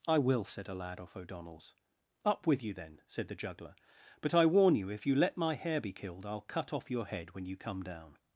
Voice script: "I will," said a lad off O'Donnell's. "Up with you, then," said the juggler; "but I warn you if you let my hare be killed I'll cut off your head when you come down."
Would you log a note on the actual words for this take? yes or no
no